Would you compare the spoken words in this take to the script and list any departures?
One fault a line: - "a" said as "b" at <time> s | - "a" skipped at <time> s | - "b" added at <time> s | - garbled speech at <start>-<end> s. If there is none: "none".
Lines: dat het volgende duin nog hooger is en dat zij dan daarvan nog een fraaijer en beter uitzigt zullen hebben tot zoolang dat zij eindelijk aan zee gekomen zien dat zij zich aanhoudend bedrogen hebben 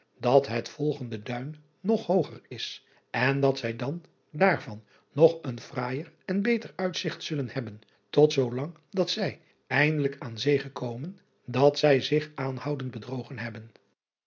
- "zien" skipped at 11.2 s